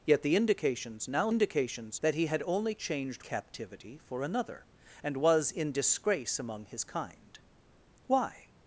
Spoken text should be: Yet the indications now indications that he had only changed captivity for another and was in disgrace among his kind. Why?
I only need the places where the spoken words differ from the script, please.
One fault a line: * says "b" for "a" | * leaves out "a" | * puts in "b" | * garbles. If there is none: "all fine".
all fine